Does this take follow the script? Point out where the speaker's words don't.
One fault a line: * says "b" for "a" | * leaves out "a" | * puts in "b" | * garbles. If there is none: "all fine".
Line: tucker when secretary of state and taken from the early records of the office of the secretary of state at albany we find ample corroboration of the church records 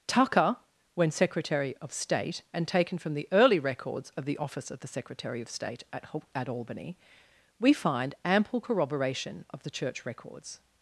* puts in "at"